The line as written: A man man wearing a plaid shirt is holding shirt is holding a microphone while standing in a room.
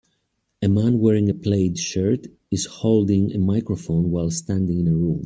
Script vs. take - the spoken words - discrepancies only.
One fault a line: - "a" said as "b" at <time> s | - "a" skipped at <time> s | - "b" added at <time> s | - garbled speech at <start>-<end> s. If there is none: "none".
- "man" skipped at 1.0 s
- "shirt is holding" skipped at 3.3 s